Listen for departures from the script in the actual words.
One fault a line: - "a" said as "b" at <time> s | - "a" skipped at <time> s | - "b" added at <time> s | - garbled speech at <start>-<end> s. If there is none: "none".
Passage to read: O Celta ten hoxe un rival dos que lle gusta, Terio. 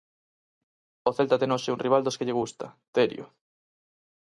none